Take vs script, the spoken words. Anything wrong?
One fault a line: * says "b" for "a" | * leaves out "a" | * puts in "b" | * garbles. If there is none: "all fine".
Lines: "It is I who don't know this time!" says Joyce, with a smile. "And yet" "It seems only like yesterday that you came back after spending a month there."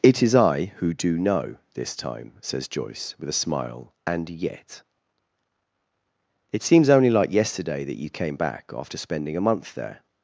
* says "do" for "don't"